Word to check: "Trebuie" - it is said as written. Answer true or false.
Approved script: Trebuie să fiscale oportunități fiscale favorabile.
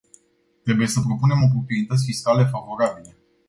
true